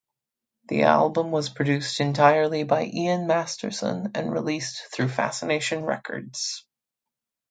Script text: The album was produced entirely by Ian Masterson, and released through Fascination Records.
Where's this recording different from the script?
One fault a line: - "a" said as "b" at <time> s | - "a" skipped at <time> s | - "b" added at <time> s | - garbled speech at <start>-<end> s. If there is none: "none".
none